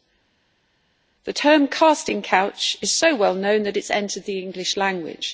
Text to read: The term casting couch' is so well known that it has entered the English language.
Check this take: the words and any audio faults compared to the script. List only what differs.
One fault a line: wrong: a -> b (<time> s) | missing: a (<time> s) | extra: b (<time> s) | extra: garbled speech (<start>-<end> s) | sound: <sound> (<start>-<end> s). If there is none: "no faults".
no faults